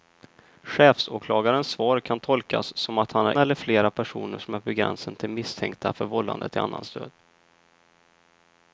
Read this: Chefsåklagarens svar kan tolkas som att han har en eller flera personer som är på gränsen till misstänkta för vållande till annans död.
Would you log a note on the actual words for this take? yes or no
yes